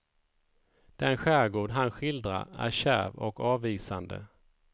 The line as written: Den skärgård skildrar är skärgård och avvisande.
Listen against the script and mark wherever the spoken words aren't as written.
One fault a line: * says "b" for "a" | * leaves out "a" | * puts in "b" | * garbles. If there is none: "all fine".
* puts in "han"
* says "kärv" for "skärgård"